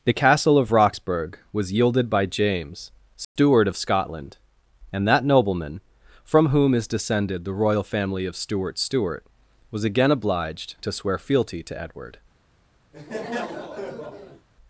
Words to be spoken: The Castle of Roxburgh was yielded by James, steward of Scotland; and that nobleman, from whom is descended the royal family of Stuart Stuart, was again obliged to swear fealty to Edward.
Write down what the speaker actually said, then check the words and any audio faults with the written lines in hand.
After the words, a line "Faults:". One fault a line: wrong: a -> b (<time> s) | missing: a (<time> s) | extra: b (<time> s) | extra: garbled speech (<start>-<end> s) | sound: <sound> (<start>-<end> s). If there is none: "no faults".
The Castle of Roxburgh was yielded by James, steward of Scotland; and that nobleman, from whom is descended the royal family of Stuart Stuart, was again obliged to swear fealty to Edward.
Faults:
sound: dropout (3.2-3.4 s)
sound: laugh (12.9-14.5 s)